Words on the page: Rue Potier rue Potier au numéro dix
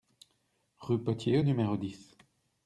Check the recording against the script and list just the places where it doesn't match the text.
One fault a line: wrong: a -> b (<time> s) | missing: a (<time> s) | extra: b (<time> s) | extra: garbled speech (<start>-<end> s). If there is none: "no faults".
missing: rue Potier (1.4 s)